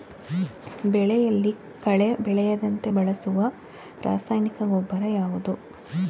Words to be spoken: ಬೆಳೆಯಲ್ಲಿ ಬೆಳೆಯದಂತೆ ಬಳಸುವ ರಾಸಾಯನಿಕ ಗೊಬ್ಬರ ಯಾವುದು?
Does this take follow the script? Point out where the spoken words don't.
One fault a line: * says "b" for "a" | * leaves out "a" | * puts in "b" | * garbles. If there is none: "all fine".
* puts in "ಕಳೆ"